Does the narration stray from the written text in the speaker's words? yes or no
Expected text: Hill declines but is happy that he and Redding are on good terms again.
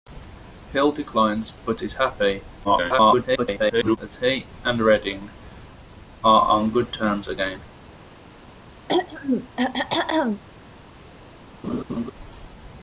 yes